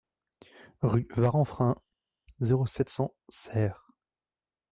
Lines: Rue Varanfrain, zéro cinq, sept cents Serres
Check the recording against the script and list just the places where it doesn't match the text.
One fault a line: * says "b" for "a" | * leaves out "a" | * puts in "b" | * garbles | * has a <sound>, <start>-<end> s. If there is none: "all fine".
* leaves out "cinq"